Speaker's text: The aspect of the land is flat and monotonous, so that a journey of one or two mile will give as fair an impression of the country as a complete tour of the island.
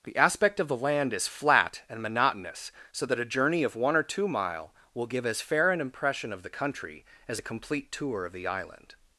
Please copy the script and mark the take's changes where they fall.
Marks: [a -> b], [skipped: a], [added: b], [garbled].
The aspect of the land is flat and monotonous, so that a journey of one or two mile will give as fair an impression of the country as a complete tour of the island.